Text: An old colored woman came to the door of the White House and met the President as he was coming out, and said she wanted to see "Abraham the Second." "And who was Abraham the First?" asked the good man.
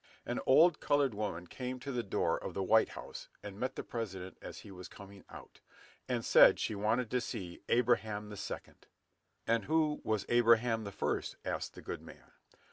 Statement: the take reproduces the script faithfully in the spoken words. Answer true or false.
true